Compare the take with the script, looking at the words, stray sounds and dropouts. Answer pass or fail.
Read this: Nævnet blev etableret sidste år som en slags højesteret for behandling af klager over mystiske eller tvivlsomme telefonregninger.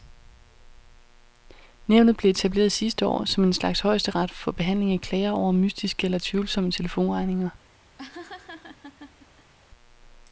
fail